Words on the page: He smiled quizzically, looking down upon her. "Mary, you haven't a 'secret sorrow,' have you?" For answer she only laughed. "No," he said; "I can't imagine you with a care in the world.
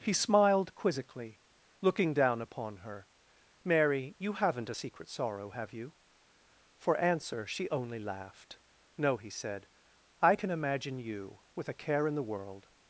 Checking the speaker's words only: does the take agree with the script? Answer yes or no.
no